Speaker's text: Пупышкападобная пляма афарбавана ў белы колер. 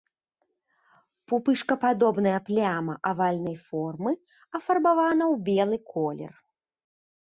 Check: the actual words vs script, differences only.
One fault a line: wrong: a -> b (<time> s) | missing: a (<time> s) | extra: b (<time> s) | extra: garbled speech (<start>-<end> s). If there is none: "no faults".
extra: авальнай формы (3.1 s)